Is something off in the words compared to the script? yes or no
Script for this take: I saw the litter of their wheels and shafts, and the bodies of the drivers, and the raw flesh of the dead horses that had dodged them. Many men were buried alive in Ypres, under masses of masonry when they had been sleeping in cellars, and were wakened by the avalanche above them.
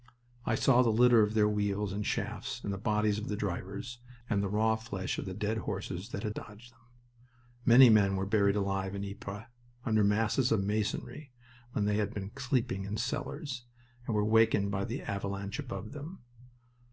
no